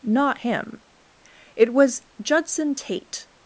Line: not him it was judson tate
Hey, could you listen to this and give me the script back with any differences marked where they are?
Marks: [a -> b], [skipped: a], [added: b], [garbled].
not him it was judson tate